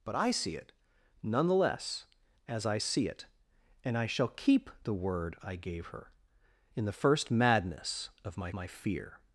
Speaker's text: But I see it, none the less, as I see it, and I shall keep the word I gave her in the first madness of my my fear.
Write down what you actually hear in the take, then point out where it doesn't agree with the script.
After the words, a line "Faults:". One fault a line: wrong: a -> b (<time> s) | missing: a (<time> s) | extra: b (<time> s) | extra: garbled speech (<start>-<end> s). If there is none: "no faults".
But I see it, none the less, as I see it, and I shall keep the word I gave her in the first madness of my my fear.
Faults:
no faults